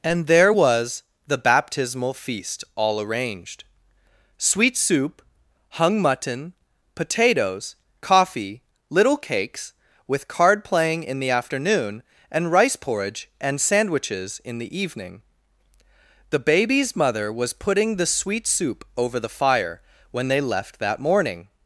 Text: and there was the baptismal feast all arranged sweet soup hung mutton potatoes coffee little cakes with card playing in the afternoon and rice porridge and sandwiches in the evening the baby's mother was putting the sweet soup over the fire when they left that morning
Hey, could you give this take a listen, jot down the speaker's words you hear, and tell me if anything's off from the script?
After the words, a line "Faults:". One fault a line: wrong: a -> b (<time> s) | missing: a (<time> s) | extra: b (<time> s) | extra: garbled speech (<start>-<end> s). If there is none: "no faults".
and there was the baptismal feast all arranged sweet soup hung mutton potatoes coffee little cakes with card playing in the afternoon and rice porridge and sandwiches in the evening the baby's mother was putting the sweet soup over the fire when they left that morning
Faults:
no faults